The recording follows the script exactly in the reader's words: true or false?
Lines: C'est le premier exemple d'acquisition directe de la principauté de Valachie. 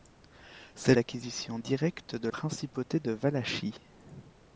false